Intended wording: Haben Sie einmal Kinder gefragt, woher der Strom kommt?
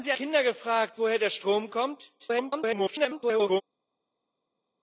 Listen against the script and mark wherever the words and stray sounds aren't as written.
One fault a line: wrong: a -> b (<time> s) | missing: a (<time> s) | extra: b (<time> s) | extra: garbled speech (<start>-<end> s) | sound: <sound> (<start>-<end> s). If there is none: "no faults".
missing: einmal (0.1 s)
extra: garbled speech (2.2-3.6 s)